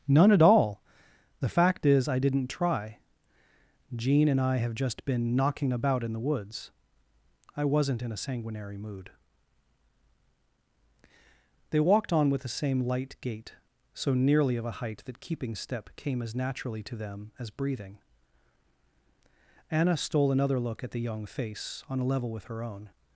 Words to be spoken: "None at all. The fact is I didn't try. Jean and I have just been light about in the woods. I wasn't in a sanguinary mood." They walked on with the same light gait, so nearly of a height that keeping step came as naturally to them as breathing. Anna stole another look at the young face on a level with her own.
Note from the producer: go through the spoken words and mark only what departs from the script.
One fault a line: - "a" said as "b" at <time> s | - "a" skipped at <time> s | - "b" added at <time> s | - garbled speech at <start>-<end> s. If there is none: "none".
- "light" said as "knocking" at 5.3 s